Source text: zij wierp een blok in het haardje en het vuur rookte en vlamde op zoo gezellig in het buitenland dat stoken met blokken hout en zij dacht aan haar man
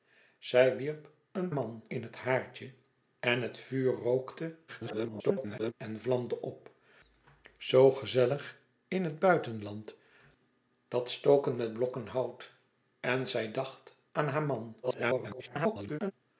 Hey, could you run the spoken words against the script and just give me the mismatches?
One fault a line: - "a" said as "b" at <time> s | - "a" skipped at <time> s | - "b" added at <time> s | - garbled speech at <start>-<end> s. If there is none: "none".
- "blok" said as "man" at 1.5 s
- garbled speech at 4.7-5.7 s
- garbled speech at 14.8-16.1 s